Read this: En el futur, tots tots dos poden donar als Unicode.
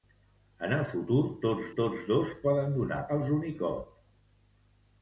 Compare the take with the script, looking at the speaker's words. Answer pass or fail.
pass